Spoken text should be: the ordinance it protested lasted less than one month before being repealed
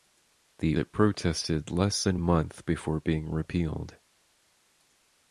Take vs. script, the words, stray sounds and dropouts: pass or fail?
fail